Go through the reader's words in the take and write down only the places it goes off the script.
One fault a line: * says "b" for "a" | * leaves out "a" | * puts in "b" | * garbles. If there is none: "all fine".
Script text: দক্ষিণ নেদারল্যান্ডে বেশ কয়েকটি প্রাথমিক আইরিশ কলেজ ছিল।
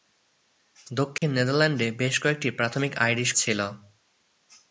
* leaves out "কলেজ"